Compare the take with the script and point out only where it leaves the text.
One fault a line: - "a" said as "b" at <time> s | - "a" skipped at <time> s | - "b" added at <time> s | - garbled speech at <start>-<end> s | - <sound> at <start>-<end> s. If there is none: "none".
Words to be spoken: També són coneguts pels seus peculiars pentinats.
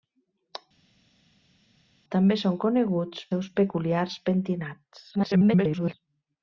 - "pels" skipped at 3.3 s
- garbled speech at 5.1-5.9 s